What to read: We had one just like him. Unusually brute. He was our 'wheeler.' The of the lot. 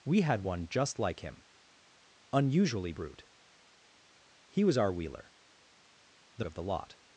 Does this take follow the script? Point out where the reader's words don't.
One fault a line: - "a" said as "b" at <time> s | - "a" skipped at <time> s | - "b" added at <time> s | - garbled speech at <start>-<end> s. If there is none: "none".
none